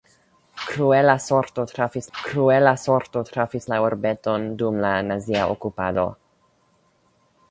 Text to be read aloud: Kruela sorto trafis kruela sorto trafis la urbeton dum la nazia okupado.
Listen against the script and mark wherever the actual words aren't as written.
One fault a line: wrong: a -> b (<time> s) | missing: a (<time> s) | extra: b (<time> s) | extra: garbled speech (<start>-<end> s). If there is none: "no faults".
no faults